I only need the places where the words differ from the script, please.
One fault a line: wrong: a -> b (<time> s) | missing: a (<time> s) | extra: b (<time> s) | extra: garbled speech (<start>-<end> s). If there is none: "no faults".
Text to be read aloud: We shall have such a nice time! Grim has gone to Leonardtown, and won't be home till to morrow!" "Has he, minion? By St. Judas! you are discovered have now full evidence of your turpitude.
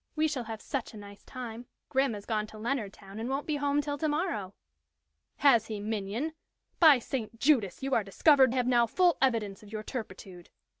no faults